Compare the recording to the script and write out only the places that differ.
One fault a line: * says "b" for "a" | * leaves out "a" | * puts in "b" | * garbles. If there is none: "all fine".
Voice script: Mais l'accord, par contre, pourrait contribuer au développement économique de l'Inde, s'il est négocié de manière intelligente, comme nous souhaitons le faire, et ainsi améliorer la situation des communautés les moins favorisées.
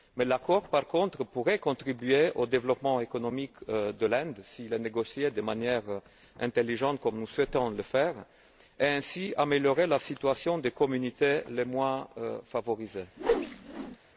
all fine